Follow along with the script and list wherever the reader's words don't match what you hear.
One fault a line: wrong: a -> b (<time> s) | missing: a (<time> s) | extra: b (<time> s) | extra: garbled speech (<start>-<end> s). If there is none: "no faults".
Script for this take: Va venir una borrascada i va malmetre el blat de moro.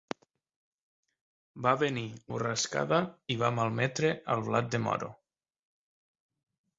missing: una (2.0 s)